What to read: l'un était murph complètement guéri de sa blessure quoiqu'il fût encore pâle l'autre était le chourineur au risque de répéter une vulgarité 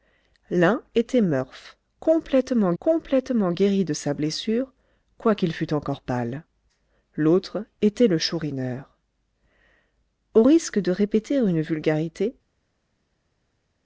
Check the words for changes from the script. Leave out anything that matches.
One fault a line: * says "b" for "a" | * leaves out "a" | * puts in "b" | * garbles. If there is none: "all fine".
* puts in "complètement"